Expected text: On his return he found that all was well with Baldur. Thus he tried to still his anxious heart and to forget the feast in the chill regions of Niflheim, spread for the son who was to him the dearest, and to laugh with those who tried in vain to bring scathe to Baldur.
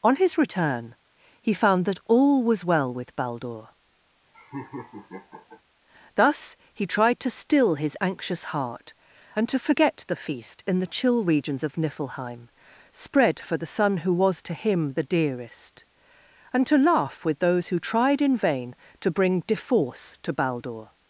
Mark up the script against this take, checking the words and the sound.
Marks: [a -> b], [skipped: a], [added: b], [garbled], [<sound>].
On his return he found that all was well with Baldur. [laugh] Thus he tried to still his anxious heart and to forget the feast in the chill regions of Niflheim, spread for the son who was to him the dearest, and to laugh with those who tried in vain to bring [scathe -> deforce] to Baldur.